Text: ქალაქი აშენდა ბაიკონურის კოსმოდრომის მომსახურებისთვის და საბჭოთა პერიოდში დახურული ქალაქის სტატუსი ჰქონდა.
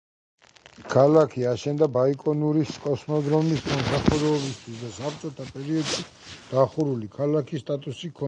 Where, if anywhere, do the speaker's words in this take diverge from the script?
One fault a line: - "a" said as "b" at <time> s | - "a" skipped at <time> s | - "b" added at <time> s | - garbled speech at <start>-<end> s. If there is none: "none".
none